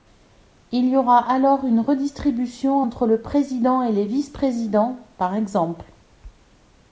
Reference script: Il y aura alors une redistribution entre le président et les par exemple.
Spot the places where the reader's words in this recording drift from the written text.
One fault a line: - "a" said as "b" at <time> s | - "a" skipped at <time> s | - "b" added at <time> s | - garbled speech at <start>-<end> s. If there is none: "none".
- "vice présidents" added at 4.0 s